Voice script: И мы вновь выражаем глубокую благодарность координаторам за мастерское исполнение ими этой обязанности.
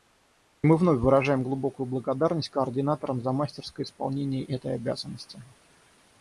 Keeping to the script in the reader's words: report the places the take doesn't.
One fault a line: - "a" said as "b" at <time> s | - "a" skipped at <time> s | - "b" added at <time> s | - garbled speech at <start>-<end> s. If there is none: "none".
- "ими" skipped at 4.4 s